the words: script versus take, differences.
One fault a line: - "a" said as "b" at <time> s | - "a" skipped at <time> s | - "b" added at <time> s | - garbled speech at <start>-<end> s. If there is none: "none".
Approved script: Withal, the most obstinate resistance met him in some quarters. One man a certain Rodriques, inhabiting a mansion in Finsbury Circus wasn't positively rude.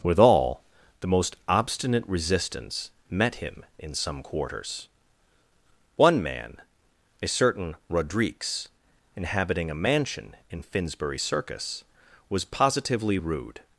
- "wasn't" said as "was" at 12.3 s